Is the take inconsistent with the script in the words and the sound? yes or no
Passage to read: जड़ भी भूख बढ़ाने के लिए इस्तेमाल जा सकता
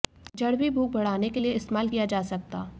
yes